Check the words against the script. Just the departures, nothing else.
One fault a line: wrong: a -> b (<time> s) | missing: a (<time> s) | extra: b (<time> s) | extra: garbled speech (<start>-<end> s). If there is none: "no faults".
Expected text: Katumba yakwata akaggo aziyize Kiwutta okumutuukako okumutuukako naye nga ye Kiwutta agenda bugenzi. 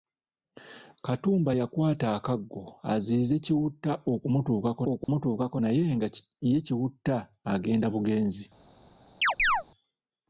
no faults